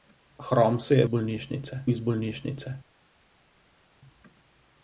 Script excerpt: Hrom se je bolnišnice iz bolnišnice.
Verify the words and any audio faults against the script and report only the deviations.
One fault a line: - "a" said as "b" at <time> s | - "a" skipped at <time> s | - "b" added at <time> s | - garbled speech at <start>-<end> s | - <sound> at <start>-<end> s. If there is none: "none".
none